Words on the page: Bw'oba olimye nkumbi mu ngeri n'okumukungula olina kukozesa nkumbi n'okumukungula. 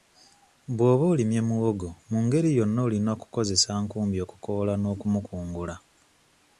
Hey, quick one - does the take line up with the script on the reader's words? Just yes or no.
no